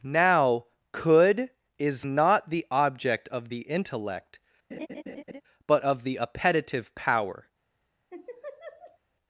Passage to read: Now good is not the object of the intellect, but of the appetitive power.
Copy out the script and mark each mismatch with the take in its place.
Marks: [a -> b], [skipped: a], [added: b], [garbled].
Now [good -> could] is not the object of the intellect, but of the appetitive power.